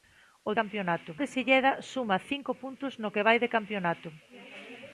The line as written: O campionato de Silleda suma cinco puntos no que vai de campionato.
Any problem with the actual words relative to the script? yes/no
no